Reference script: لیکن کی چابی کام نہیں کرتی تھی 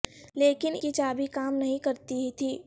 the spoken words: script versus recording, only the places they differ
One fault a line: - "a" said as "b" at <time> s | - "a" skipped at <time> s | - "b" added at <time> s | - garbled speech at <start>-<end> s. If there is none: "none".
none